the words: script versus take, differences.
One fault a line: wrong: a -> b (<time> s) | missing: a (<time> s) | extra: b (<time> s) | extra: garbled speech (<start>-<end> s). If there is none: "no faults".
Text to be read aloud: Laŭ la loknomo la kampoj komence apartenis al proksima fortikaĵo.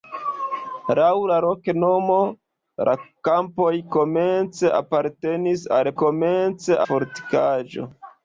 wrong: proksima -> komence (6.0 s)